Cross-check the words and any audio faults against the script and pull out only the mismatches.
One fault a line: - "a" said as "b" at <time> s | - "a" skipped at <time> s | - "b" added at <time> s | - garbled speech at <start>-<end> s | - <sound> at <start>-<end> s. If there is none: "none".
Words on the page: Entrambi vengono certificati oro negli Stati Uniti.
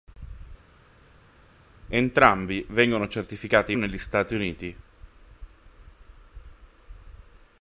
- "oro" skipped at 3.7 s